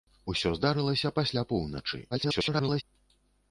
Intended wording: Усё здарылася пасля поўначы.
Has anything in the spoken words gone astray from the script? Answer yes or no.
yes